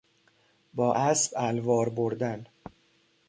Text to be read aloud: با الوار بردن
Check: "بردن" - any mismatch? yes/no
no